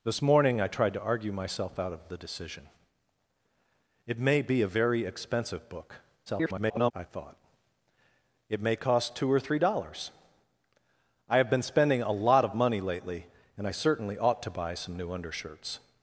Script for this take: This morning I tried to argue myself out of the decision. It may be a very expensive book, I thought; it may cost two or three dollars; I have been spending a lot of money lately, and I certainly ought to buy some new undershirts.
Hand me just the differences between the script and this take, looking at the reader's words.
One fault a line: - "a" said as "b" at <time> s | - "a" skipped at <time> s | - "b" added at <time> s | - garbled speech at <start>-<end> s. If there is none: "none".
- garbled speech at 6.3-6.9 s